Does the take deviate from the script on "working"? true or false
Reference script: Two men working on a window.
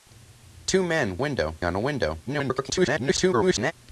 true